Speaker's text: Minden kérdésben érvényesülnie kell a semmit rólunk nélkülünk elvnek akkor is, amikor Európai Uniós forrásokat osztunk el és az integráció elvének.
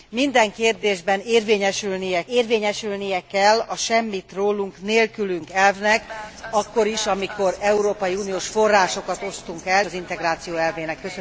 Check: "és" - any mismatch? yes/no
yes